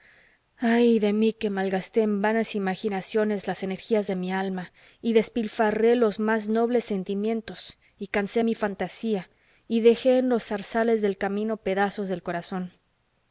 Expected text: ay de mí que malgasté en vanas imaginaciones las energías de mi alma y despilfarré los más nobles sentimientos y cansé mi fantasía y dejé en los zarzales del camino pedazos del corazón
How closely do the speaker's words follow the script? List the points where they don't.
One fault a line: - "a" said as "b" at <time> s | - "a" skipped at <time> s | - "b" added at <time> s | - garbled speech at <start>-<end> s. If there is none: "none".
none